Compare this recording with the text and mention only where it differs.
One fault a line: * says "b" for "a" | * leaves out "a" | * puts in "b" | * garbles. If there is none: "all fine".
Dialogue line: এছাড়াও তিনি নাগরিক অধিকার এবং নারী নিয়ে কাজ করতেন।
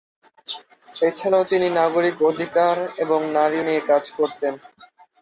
all fine